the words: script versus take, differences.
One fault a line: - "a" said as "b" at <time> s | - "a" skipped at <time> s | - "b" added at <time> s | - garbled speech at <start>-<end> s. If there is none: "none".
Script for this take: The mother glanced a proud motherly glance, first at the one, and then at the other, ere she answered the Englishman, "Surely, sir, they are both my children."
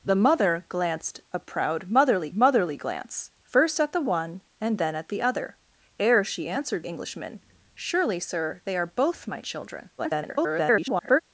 - "motherly" added at 2.3 s
- "the" skipped at 6.8 s
- garbled speech at 10.0-11.2 s